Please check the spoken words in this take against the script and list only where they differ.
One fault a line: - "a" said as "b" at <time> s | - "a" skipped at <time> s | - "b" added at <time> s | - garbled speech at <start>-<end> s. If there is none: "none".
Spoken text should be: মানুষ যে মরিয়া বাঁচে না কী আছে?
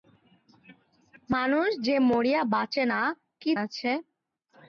none